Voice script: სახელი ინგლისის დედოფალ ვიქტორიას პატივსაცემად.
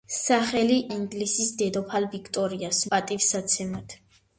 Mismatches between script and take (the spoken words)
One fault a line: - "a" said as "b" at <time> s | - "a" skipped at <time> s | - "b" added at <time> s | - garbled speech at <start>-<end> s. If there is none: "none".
none